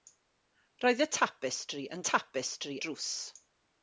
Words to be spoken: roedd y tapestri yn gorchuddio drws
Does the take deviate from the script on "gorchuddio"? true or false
true